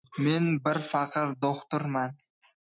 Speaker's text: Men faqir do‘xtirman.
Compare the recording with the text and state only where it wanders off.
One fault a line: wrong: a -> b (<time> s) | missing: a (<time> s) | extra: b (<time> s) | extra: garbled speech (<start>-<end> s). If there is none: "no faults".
extra: bir (0.7 s)